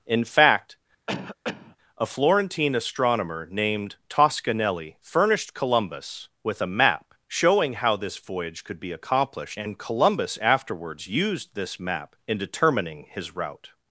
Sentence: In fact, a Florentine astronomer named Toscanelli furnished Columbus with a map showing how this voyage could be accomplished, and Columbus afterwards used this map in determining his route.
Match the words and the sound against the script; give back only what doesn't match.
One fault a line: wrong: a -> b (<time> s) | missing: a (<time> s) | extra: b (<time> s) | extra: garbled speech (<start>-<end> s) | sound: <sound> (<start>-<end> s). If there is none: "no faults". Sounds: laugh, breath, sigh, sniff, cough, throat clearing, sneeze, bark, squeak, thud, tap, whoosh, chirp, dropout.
sound: cough (1.1-1.8 s)